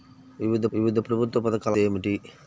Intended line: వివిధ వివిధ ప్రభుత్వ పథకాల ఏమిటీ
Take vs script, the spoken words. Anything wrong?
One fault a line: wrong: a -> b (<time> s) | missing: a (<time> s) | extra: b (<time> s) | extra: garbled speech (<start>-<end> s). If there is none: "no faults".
no faults